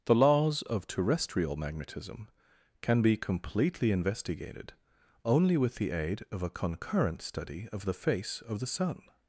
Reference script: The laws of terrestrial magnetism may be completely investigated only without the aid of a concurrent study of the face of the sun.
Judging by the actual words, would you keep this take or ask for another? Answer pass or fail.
fail